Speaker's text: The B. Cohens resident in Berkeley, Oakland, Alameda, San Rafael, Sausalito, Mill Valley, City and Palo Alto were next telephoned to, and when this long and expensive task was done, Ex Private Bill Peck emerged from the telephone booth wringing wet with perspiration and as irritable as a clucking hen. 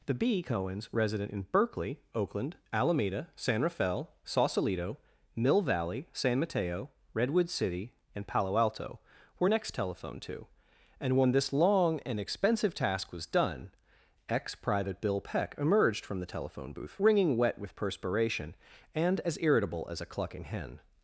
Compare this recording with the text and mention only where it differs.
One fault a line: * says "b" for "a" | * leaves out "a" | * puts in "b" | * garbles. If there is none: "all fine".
* puts in "San Mateo Redwood"